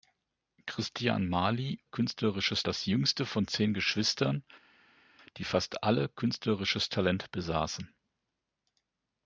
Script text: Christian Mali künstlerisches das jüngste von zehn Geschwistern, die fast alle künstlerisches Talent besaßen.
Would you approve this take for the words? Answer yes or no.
yes